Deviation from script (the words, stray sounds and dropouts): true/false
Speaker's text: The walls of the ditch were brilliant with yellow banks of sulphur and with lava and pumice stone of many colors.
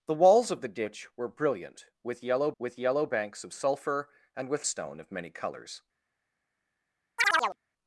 true